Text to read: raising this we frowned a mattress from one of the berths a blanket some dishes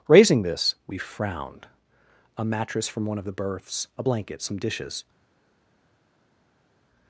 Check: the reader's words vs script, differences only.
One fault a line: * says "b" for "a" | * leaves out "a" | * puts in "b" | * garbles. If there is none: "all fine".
all fine